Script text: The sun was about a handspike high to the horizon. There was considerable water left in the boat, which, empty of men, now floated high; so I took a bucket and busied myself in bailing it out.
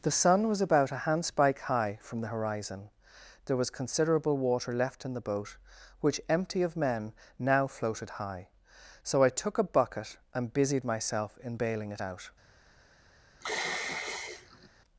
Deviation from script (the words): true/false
true